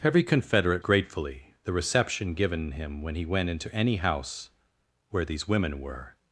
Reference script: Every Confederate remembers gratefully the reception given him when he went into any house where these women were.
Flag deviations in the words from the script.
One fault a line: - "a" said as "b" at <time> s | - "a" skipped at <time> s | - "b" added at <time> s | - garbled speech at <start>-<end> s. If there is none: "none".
- "remembers" skipped at 0.8 s